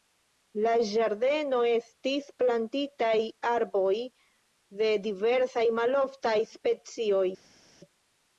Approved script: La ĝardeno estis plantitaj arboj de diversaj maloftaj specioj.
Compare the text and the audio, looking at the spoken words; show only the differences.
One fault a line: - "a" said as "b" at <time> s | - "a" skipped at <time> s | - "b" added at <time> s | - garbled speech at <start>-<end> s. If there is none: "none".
none